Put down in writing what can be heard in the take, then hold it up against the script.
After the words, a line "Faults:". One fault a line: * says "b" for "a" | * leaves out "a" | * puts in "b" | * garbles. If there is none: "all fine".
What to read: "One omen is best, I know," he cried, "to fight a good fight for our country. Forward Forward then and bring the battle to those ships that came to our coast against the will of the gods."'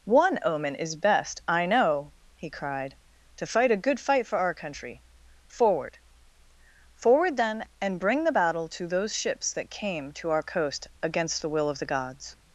"One omen is best, I know," he cried, "to fight a good fight for our country. Forward Forward then and bring the battle to those ships that came to our coast against the will of the gods."'
Faults:
all fine